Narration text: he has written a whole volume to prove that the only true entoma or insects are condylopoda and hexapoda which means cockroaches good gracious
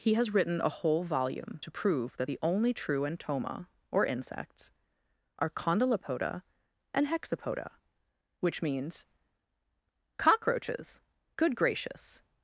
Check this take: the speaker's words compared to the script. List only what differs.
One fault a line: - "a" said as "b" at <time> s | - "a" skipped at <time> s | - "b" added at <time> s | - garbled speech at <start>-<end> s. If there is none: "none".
none